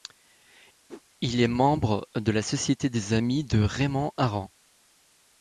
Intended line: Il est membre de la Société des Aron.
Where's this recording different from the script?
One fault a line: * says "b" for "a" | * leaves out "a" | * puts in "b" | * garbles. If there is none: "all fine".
* puts in "amis de Raymond"